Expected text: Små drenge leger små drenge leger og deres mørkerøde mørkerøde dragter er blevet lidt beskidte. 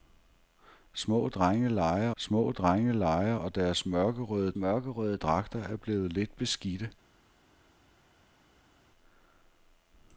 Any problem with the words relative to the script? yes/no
no